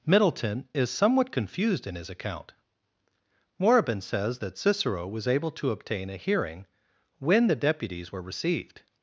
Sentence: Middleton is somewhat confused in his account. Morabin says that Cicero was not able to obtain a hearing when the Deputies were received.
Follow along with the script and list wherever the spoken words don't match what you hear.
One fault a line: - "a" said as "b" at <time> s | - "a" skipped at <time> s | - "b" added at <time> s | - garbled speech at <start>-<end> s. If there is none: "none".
- "not" skipped at 5.3 s